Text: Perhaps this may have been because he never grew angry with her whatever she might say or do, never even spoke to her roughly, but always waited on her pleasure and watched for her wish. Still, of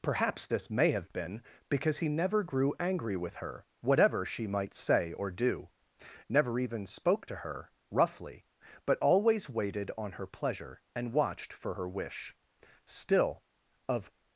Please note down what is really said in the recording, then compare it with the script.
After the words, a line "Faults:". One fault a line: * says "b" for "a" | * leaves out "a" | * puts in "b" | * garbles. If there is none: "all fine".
Perhaps this may have been because he never grew angry with her whatever she might say or do, never even spoke to her roughly, but always waited on her pleasure and watched for her wish. Still, of
Faults:
all fine